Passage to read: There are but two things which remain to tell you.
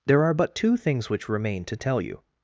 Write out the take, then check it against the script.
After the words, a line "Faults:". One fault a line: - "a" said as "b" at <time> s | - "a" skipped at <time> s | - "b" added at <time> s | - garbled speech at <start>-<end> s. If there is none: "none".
There are but two things which remain to tell you.
Faults:
none